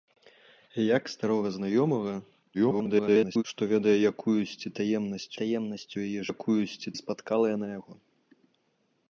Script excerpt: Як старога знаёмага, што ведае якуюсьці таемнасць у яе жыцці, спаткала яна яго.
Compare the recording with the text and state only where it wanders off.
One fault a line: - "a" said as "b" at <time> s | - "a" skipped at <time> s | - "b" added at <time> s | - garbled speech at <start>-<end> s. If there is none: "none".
- garbled speech at 2.5-3.4 s
- "таемнасць" added at 5.4 s
- "жыцці" said as "якуюсьці" at 6.3 s